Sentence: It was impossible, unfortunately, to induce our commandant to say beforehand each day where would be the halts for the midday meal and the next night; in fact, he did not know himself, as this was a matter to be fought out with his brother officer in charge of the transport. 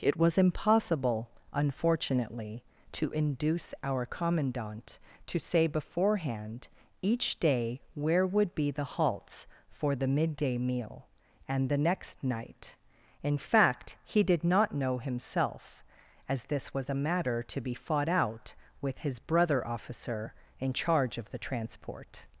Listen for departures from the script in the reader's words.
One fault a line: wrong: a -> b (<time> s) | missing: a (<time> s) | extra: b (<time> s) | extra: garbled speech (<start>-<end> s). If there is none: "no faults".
no faults